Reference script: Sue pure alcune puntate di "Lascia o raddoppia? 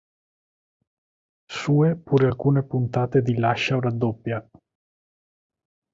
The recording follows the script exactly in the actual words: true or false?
true